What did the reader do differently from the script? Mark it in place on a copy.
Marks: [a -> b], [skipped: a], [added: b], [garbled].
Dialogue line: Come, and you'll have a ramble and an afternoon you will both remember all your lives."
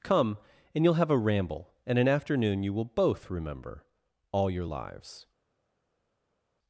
Come, and you'll have a ramble and an afternoon you will both remember all your lives."